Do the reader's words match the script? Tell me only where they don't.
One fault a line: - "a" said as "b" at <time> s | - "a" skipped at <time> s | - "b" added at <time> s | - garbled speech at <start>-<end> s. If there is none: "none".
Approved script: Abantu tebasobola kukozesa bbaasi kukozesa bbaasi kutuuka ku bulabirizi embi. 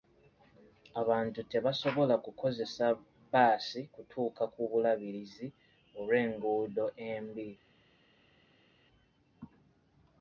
- "kukozesa bbaasi" skipped at 3.8 s
- "olw'enguudo" added at 6.0 s